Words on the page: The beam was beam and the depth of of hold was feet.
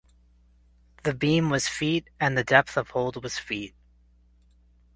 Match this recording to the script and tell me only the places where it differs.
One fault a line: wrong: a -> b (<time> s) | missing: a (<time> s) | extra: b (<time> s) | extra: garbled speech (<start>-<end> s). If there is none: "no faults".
wrong: beam -> feet (1.7 s)
missing: of (2.9 s)